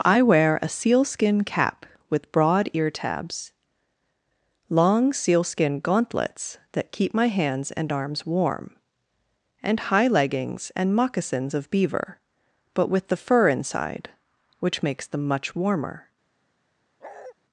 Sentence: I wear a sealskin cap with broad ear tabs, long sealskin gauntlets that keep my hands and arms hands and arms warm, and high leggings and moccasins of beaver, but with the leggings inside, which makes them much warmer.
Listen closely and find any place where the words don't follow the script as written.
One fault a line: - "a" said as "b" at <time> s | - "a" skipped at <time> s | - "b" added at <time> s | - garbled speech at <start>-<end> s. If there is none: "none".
- "hands and arms" skipped at 8.2 s
- "leggings" said as "fur" at 13.2 s